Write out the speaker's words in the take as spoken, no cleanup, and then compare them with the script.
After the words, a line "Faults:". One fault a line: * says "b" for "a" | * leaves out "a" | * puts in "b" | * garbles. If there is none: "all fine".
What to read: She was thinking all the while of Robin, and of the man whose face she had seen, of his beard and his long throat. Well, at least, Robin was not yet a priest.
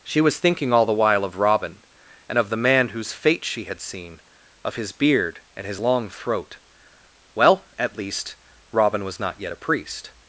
She was thinking all the while of Robin, and of the man whose fate she had seen, of his beard and his long throat. Well, at least, Robin was not yet a priest.
Faults:
* says "fate" for "face"